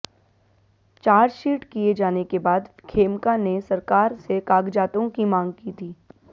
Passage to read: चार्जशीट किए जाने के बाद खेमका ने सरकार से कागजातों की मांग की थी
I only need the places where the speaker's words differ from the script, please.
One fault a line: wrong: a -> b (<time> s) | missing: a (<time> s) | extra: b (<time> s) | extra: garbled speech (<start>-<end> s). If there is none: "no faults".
no faults